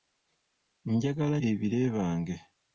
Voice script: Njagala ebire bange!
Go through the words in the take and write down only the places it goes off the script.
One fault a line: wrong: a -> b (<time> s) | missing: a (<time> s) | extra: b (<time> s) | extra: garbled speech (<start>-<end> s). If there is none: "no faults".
no faults